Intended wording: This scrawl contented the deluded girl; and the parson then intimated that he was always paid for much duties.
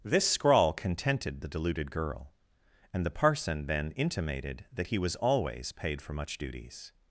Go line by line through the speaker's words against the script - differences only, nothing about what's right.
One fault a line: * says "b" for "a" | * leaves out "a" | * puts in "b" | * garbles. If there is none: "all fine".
all fine